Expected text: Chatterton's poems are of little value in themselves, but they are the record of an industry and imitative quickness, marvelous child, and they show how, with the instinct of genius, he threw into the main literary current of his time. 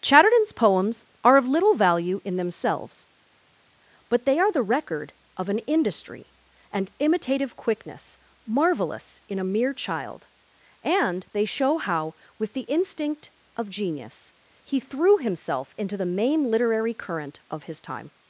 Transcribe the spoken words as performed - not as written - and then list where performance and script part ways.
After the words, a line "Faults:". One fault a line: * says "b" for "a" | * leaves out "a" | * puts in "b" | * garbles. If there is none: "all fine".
Chatterton's poems are of little value in themselves, but they are the record of an industry and imitative quickness, marvelous in a mere child, and they show how, with the instinct of genius, he threw himself into the main literary current of his time.
Faults:
* puts in "in a mere"
* puts in "himself"